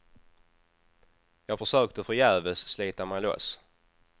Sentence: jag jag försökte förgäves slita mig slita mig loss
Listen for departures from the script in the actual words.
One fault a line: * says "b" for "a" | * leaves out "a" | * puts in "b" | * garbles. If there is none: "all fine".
* leaves out "jag"
* leaves out "slita mig"